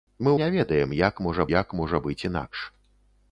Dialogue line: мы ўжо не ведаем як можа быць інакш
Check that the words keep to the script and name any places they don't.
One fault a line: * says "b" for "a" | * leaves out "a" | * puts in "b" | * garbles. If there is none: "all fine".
* leaves out "ўжо"
* puts in "як можа"